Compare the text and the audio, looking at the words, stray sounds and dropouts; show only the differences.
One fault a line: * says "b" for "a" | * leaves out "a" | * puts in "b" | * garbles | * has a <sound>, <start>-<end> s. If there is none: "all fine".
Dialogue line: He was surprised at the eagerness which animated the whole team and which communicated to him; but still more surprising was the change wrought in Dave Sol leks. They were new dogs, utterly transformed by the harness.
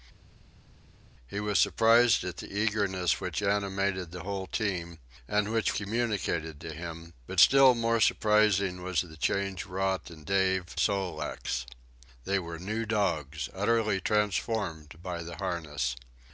all fine